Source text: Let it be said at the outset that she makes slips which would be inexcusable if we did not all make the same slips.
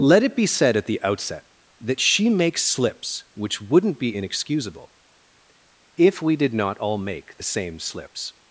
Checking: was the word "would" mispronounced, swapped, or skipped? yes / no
yes